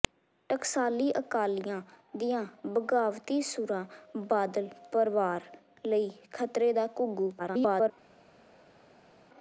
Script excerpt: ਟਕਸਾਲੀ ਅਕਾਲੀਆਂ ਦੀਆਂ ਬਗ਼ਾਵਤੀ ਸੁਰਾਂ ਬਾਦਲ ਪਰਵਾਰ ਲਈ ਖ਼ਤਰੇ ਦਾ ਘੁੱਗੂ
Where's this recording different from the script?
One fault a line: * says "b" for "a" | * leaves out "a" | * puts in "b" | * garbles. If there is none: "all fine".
* garbles